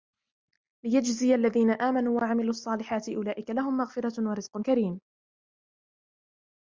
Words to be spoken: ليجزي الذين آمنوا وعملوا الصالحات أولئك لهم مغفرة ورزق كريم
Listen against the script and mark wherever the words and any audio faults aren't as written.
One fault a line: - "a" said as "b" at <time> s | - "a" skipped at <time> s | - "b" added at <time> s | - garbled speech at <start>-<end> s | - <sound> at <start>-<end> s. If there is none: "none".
none